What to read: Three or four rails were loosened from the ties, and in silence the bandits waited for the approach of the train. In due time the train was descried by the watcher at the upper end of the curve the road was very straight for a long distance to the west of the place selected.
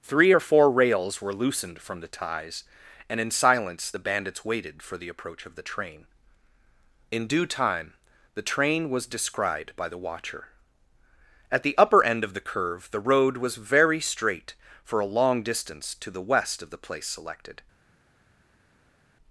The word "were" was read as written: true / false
true